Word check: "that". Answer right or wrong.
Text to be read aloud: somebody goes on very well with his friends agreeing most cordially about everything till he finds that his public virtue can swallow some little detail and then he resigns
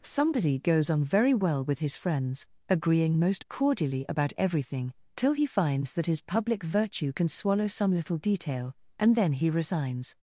right